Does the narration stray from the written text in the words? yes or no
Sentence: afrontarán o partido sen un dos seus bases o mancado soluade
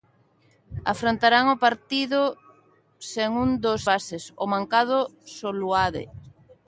yes